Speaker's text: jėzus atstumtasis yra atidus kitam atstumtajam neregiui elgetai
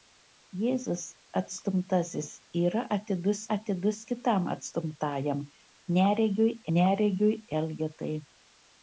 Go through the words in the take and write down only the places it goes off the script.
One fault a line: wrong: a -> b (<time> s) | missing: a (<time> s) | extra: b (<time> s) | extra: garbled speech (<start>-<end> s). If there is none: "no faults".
extra: atidus (3.5 s)
extra: neregiui (6.8 s)